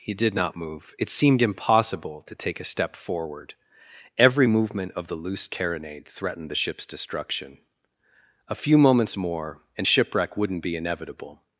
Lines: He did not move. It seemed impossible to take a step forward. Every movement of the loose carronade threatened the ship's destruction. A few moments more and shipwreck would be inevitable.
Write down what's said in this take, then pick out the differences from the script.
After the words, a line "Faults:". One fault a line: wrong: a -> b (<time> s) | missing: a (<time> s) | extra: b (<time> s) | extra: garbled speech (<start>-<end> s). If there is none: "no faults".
He did not move. It seemed impossible to take a step forward. Every movement of the loose carronade threatened the ship's destruction. A few moments more and shipwreck wouldn't be inevitable.
Faults:
wrong: would -> wouldn't (10.4 s)